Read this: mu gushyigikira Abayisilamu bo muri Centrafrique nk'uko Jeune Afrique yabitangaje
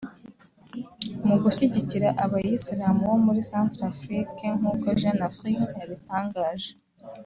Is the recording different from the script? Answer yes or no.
no